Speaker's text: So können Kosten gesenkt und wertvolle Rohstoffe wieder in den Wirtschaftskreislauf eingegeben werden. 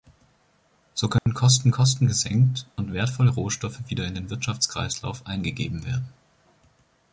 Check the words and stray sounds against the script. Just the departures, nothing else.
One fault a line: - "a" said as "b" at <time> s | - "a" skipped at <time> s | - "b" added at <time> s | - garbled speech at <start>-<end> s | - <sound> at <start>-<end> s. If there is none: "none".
- dropout at 1.2-1.3 s
- "Kosten" added at 1.7 s